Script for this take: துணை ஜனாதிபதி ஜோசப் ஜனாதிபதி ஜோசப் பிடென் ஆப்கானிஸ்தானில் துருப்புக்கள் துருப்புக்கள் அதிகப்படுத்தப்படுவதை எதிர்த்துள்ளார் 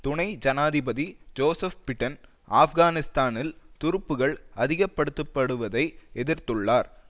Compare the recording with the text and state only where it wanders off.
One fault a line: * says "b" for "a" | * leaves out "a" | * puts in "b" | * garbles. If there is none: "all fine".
* leaves out "ஜனாதிபதி ஜோசப்"
* leaves out "துருப்புக்கள்"